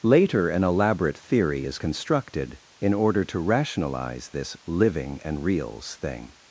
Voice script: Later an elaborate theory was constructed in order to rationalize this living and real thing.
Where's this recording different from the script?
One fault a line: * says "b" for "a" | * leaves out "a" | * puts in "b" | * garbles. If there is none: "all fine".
* says "is" for "was"
* says "reals" for "real"